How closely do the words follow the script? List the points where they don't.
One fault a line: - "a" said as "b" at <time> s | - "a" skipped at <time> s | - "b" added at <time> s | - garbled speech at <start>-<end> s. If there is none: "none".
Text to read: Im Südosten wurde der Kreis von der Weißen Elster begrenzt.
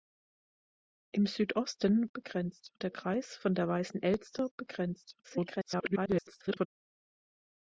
- "wurde" said as "begrenzt" at 2.1 s
- garbled speech at 5.2-6.7 s